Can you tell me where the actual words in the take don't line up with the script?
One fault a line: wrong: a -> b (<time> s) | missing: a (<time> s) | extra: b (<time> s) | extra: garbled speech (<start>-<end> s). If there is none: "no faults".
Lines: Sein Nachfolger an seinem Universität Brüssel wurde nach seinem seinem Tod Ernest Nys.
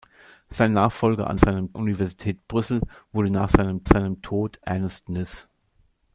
no faults